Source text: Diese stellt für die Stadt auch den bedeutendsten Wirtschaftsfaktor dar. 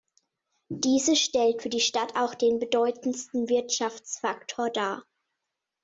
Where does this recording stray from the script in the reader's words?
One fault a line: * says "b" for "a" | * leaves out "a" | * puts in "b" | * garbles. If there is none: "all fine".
all fine